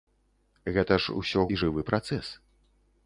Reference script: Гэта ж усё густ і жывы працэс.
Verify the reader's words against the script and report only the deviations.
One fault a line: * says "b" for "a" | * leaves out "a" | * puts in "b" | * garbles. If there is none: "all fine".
* leaves out "густ"